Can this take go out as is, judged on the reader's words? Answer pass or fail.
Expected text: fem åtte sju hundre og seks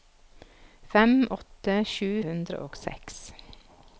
pass